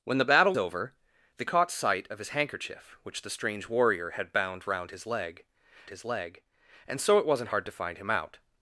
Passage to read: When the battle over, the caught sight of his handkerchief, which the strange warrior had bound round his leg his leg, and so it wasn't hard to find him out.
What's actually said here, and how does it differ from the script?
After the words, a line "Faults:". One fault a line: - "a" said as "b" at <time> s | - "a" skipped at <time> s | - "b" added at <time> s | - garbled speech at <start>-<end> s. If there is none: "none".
When the battle over, the caught sight of his handkerchief, which the strange warrior had bound round his leg his leg, and so it wasn't hard to find him out.
Faults:
none